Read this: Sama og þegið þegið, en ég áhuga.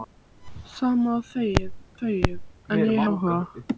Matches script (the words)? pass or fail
pass